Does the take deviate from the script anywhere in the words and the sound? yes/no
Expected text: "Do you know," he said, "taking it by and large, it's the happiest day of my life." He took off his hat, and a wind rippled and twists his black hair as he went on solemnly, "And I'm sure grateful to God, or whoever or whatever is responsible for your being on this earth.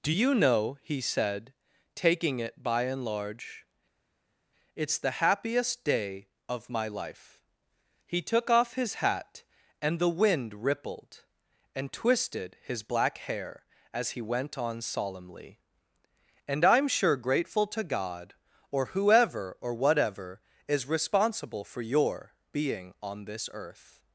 yes